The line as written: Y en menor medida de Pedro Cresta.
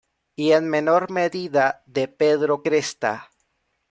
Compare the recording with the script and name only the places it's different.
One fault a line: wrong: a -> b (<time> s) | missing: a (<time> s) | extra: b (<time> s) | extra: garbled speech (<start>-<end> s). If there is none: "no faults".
no faults